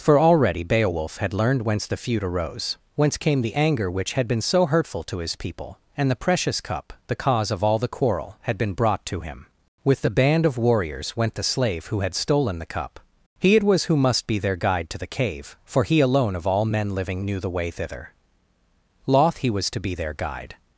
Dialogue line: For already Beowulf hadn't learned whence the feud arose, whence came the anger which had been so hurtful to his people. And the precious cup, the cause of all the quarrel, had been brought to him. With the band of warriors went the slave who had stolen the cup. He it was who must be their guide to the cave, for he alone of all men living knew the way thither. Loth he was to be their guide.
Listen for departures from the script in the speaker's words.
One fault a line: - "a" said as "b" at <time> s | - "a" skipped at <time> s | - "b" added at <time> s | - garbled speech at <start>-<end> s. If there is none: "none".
- "hadn't" said as "had" at 1.2 s